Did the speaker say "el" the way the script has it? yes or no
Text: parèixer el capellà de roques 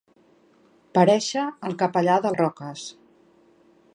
yes